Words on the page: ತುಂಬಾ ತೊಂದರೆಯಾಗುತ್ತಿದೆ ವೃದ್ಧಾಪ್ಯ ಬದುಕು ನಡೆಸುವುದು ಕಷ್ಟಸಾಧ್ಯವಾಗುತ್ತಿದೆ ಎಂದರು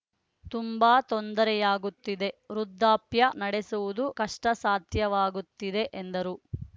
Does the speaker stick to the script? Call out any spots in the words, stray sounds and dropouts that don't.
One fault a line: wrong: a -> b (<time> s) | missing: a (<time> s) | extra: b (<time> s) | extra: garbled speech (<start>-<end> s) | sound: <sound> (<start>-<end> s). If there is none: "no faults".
missing: ಬದುಕು (3.3 s)